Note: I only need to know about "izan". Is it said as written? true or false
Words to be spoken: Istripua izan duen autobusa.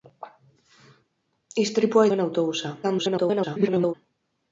false